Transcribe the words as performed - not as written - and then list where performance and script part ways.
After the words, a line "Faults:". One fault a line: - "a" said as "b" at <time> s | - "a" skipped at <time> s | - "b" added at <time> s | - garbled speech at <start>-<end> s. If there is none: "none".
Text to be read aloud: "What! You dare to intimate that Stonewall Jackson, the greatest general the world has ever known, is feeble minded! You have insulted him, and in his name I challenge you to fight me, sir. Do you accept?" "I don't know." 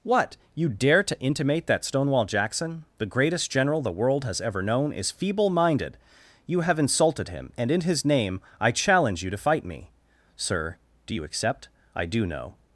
"What! You dare to intimate that Stonewall Jackson, the greatest general the world has ever known, is feeble minded! You have insulted him, and in his name I challenge you to fight me, sir. Do you accept?" "I do know."
Faults:
- "don't" said as "do" at 12.1 s